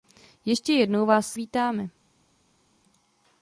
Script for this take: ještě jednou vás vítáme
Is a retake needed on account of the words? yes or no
no